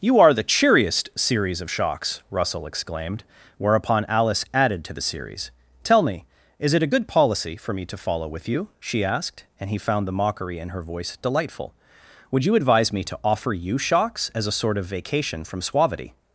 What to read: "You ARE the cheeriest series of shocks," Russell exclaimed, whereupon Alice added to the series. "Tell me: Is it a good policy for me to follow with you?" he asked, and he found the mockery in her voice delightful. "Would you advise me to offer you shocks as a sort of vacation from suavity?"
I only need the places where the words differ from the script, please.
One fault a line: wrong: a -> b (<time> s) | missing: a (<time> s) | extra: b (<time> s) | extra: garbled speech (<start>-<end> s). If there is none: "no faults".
wrong: he -> she (8.8 s)